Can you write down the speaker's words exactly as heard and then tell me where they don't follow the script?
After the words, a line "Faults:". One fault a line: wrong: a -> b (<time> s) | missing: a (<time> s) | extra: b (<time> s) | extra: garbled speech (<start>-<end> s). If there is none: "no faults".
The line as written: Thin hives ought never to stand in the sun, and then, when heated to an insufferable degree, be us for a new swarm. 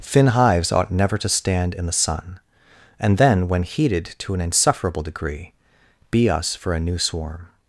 Thin hives ought never to stand in the sun, and then, when heated to an insufferable degree, be us for a new swarm.
Faults:
no faults